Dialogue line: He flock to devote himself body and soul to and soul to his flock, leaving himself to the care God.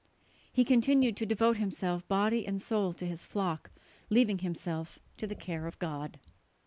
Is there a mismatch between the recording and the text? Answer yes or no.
yes